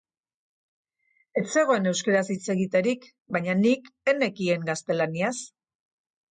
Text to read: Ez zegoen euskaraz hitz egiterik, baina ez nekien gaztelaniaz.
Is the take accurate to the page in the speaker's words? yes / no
no